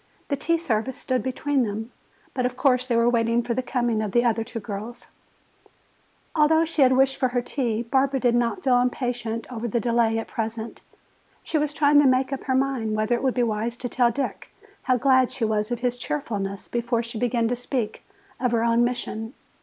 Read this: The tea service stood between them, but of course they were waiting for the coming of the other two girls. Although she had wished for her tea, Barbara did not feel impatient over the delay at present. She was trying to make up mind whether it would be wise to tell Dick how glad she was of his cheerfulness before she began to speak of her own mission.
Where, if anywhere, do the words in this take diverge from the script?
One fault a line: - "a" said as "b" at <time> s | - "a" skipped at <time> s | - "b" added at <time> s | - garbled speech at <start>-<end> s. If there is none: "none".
- "her" added at 12.4 s